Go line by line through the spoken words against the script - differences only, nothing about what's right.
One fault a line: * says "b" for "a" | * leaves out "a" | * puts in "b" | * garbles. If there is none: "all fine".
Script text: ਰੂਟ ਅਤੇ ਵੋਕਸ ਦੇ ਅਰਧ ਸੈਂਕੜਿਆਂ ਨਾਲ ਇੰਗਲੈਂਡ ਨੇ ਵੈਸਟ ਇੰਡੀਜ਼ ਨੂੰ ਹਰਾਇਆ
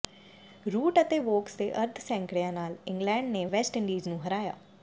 all fine